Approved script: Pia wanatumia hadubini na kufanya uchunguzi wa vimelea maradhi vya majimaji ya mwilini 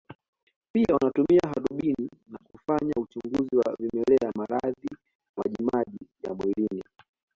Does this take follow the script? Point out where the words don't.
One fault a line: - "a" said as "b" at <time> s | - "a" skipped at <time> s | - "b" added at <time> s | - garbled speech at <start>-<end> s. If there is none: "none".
- "vya" skipped at 4.9 s